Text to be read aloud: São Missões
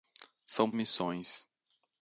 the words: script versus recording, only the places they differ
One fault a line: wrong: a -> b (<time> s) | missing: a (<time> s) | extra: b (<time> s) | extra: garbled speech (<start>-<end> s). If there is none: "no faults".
no faults